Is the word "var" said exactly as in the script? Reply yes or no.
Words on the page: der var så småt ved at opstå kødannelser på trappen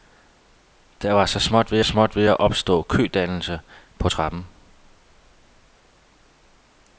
yes